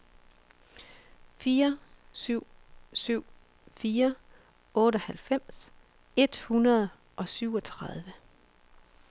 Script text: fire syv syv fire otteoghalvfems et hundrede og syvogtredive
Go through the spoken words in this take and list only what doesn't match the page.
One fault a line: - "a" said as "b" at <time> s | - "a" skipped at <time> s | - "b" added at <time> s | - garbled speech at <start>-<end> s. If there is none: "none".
none